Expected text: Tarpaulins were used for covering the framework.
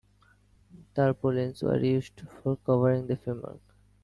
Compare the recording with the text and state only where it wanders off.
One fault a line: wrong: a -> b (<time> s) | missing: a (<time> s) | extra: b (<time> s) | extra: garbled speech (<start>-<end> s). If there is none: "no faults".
no faults